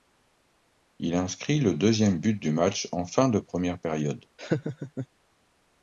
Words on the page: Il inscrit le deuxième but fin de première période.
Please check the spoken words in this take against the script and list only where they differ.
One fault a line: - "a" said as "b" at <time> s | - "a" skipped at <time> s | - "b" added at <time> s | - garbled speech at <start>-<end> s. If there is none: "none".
- "du match en" added at 2.3 s